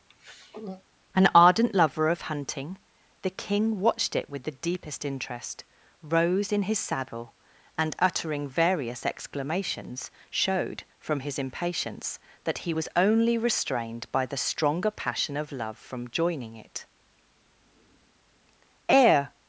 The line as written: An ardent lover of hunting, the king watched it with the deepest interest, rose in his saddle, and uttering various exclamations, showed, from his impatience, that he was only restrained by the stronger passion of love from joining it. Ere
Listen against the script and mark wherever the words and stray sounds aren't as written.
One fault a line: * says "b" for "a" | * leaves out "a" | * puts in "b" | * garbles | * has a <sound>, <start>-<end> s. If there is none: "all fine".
* has a throat clearing, 0.1-0.8 s